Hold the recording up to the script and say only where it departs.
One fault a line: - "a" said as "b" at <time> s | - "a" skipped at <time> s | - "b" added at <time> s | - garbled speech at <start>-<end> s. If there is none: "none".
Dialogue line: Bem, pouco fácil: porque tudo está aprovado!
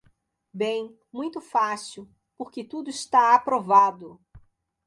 - "pouco" said as "muito" at 1.1 s